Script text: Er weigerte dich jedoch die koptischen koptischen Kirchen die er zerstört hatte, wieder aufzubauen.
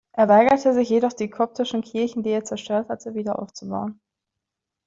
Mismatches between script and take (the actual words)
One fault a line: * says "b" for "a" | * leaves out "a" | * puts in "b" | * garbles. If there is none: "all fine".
* says "sich" for "dich"
* leaves out "koptischen"